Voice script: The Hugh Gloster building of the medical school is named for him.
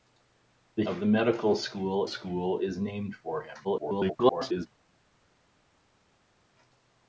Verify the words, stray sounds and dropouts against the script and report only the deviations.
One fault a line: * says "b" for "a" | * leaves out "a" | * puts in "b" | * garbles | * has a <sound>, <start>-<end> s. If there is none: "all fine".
* leaves out "Hugh Gloster building"
* puts in "school"
* garbles